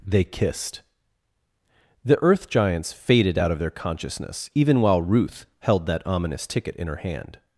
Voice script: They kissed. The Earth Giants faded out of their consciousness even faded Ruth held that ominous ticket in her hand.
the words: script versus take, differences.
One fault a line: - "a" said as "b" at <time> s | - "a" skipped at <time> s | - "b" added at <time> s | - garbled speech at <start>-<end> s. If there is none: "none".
- "faded" said as "while" at 4.8 s